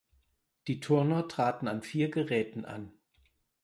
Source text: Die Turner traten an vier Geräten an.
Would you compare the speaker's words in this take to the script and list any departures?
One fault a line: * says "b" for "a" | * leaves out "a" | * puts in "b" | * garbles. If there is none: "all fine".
all fine